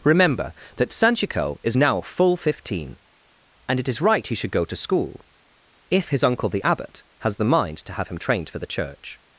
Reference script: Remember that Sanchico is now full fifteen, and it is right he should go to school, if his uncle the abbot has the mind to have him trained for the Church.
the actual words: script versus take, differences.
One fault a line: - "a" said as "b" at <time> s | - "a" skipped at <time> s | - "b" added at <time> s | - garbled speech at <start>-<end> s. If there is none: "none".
none